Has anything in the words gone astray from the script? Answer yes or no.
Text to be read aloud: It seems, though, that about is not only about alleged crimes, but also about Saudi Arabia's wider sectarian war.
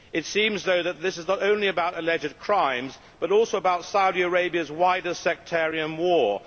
yes